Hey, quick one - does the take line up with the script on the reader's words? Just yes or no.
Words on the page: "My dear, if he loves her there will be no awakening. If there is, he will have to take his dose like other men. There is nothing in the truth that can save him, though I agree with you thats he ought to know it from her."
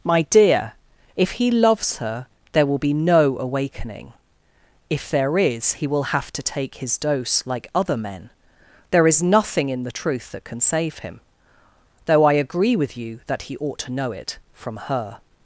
no